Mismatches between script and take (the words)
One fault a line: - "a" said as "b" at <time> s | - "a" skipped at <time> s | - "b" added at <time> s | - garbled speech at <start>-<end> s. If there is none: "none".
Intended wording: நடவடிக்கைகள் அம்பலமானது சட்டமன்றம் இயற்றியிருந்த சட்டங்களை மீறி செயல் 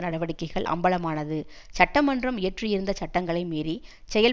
none